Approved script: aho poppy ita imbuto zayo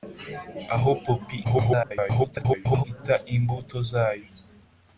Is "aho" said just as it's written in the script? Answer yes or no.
yes